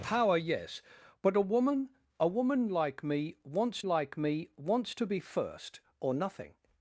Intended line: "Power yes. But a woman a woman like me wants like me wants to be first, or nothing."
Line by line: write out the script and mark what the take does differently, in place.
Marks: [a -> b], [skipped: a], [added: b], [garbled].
"Power yes. But a woman a woman like me wants like me wants to be first, or nothing."